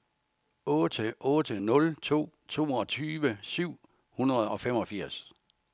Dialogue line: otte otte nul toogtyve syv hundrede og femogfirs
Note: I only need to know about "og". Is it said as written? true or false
true